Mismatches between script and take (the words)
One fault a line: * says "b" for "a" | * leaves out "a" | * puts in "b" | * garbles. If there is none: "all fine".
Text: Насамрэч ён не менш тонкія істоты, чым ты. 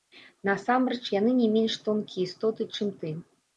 * says "яны" for "ён"